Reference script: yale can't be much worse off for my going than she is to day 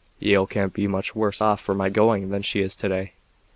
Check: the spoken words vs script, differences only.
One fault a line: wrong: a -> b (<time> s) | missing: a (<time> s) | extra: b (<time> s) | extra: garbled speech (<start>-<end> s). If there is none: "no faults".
no faults